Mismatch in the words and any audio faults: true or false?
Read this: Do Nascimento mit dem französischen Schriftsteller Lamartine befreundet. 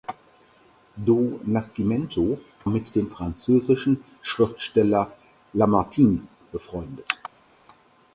false